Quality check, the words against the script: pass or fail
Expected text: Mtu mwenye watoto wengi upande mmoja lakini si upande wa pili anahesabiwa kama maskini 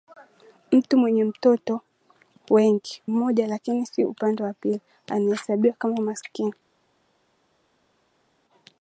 fail